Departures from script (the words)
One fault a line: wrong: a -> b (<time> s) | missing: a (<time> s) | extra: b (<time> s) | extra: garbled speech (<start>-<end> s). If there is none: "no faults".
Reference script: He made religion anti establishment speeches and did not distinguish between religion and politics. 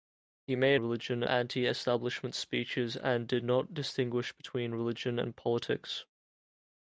no faults